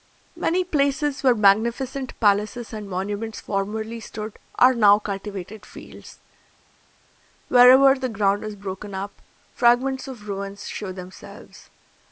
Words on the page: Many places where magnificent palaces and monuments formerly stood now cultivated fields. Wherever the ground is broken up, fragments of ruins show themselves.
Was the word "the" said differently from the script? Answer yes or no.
no